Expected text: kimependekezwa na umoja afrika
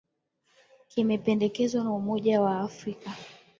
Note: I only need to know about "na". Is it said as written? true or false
true